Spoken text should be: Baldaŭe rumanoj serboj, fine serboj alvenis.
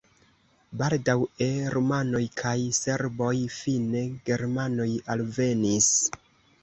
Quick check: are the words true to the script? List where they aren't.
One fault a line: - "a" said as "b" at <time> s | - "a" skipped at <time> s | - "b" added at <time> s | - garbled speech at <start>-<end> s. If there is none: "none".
- "kaj" added at 2.4 s
- "serboj" said as "germanoj" at 4.3 s